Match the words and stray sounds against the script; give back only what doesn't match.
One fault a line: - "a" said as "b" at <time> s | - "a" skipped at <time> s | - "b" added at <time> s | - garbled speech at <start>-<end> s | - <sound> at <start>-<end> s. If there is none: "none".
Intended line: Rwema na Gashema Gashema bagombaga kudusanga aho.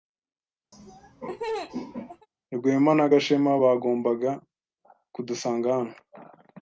- laugh at 0.7-2.3 s
- "Gashema" skipped at 3.5 s
- "aho" said as "hano" at 5.8 s